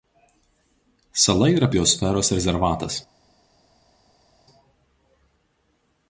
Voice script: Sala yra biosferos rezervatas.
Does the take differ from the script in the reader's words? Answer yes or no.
no